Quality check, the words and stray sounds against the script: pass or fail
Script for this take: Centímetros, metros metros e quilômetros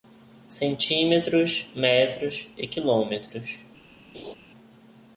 fail